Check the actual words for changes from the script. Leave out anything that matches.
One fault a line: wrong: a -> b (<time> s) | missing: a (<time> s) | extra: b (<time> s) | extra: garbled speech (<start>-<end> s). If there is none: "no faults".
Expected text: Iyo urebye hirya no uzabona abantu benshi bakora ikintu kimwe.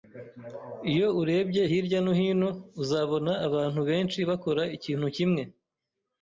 extra: hino (2.2 s)